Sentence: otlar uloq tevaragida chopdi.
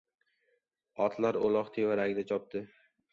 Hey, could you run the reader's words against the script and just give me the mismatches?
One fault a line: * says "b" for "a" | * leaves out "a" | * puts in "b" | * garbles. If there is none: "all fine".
all fine